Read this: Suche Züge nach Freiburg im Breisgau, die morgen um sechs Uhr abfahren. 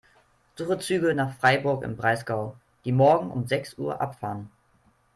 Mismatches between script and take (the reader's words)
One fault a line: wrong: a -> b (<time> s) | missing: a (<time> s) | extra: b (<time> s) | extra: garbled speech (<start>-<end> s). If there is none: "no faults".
no faults